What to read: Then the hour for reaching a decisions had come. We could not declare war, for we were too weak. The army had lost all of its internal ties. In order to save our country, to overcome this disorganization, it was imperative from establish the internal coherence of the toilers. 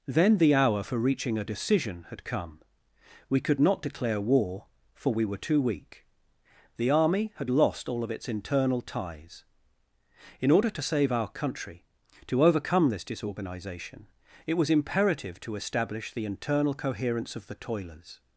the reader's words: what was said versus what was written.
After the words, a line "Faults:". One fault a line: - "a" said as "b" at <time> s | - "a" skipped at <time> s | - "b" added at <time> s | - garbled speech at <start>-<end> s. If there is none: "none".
Then the hour for reaching a decision had come. We could not declare war, for we were too weak. The army had lost all of its internal ties. In order to save our country, to overcome this disorganization, it was imperative to establish the internal coherence of the toilers.
Faults:
- "decisions" said as "decision" at 1.4 s
- "from" said as "to" at 15.4 s